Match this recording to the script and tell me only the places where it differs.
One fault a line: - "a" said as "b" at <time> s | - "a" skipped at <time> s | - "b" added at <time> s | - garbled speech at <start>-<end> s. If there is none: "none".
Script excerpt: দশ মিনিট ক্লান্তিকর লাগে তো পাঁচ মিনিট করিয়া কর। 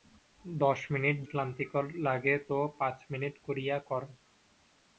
none